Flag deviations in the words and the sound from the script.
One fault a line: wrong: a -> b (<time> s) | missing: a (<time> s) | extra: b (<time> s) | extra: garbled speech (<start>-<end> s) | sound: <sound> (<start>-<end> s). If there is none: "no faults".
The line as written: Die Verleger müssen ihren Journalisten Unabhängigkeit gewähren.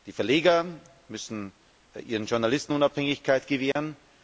sound: dropout (3.7-3.8 s)